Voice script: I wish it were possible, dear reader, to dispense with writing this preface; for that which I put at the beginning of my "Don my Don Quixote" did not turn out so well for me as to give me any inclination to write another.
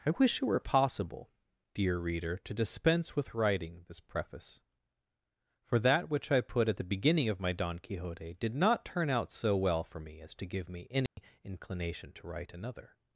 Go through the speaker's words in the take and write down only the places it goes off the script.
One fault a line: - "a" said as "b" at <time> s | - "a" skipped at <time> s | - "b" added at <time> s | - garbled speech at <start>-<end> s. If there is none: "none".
- "my Don" skipped at 7.8 s